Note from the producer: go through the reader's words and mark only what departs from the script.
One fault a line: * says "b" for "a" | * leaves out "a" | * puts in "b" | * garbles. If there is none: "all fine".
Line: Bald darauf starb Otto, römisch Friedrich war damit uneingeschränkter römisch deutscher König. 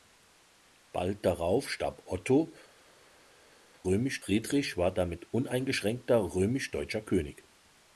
all fine